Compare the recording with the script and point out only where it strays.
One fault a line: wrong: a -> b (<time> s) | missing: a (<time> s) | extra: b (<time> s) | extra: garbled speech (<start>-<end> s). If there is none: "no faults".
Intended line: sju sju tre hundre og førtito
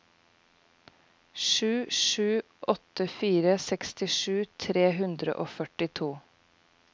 extra: åtte fire sekstisju (2.7 s)